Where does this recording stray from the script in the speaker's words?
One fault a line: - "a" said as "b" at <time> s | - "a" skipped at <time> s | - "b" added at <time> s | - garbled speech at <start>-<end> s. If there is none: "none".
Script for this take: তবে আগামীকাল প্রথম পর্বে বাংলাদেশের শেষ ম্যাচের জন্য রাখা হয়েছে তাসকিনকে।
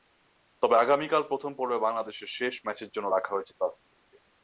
none